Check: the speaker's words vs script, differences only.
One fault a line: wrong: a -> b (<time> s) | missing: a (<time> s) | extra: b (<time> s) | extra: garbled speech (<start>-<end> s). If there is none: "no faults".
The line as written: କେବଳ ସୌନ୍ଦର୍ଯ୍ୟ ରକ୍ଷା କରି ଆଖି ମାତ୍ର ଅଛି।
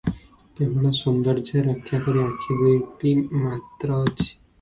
extra: ଦୁଇଟି (2.6 s)